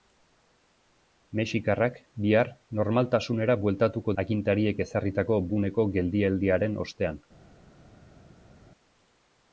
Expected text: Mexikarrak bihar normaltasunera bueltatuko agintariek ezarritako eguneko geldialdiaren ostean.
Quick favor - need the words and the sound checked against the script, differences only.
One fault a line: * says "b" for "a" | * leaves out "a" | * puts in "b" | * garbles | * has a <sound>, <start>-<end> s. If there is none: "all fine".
all fine